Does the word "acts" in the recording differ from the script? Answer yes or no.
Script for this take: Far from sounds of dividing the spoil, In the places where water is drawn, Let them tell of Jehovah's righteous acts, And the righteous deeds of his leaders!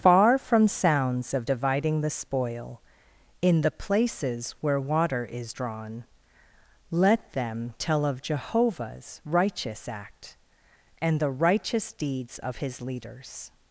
yes